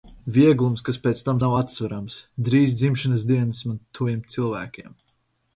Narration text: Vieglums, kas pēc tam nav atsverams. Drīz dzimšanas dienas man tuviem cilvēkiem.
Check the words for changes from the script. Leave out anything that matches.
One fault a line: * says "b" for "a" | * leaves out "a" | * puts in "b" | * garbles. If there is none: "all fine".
all fine